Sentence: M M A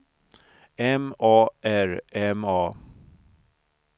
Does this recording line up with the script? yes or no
no